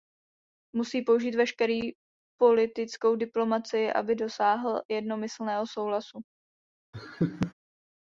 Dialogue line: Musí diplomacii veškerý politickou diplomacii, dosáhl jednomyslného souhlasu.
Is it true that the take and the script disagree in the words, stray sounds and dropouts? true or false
true